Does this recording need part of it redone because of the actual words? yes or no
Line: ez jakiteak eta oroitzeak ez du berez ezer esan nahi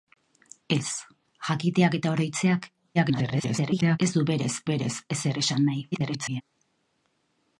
yes